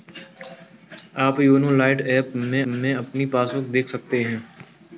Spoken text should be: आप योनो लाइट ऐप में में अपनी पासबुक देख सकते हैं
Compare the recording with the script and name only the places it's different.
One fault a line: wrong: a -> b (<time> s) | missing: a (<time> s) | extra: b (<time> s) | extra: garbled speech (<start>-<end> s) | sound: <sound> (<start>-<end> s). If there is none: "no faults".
no faults